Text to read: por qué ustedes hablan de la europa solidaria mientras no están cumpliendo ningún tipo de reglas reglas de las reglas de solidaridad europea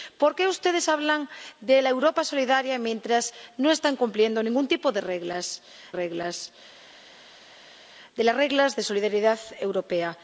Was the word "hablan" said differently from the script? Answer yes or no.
no